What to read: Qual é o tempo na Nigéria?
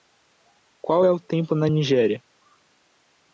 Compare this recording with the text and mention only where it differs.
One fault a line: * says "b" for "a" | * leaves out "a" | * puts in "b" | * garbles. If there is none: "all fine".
all fine